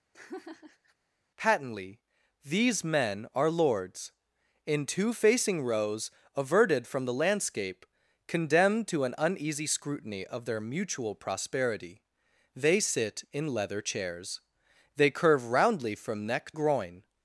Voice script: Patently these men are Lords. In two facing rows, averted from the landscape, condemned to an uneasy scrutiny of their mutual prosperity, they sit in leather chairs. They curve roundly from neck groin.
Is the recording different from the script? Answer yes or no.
no